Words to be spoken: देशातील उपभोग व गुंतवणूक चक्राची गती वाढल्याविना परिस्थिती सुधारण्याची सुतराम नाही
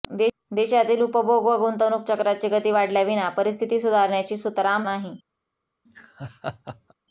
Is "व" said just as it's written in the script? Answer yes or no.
yes